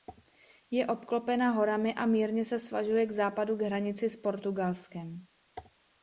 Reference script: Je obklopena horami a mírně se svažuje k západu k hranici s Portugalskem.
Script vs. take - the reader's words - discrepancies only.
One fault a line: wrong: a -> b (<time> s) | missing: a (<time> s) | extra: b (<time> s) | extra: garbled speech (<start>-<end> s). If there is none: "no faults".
no faults